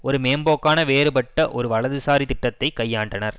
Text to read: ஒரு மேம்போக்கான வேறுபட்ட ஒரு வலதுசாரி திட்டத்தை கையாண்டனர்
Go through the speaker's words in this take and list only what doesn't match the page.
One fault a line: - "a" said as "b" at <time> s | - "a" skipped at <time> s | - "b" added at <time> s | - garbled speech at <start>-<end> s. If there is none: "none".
none